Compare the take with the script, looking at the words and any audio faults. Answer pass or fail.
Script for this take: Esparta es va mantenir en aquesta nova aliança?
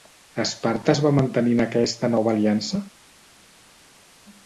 pass